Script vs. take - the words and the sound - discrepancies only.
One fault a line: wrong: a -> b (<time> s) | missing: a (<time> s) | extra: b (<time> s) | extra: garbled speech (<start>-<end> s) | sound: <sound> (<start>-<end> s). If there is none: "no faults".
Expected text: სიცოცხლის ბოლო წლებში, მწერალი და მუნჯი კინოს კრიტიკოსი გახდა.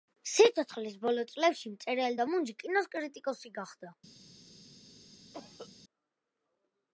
sound: cough (5.3-5.7 s)